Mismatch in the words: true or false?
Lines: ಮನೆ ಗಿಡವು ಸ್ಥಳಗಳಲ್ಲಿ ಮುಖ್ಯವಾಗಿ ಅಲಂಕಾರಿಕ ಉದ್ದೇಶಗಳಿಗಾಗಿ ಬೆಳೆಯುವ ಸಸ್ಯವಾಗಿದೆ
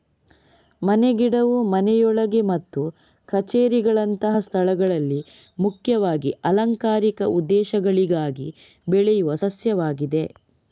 true